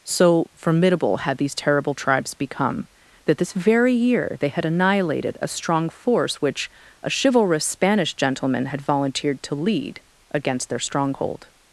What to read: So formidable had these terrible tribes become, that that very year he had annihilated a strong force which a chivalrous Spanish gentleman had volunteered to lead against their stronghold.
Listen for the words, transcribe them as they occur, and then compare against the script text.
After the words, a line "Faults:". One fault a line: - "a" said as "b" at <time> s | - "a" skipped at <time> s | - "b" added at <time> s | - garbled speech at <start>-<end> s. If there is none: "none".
So formidable had these terrible tribes become, that this very year they had annihilated a strong force which a chivalrous Spanish gentleman had volunteered to lead against their stronghold.
Faults:
- "that" said as "this" at 3.4 s
- "he" said as "they" at 4.4 s